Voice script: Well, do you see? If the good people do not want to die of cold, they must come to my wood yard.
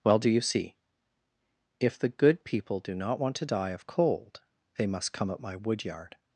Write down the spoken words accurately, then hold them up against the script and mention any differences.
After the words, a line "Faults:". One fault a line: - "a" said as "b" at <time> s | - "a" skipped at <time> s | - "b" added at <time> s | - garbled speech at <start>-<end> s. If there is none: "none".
Well, do you see? If the good people do not want to die of cold, they must come at my wood yard.
Faults:
- "to" said as "at" at 5.3 s